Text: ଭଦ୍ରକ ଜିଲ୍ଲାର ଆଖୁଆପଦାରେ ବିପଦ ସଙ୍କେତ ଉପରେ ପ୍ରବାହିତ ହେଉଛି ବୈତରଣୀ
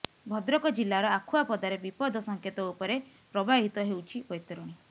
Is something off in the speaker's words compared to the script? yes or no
no